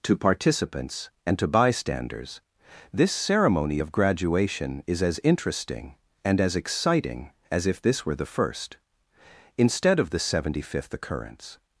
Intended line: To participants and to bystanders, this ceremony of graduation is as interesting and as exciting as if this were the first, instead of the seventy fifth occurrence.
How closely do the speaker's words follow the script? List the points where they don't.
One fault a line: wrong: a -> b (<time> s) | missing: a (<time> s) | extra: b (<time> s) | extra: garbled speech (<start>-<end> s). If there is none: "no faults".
no faults